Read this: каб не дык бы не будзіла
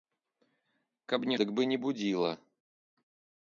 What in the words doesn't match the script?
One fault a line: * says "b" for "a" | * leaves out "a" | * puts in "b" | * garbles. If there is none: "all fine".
all fine